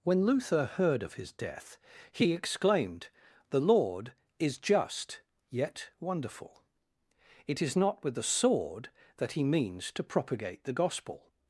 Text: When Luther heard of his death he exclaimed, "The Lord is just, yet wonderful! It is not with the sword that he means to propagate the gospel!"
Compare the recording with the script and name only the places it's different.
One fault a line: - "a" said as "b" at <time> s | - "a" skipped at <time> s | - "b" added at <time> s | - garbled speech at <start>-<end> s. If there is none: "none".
none